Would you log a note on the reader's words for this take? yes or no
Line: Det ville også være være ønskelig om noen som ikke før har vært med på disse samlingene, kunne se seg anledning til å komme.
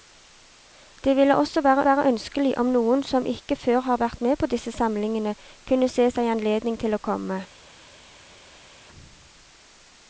no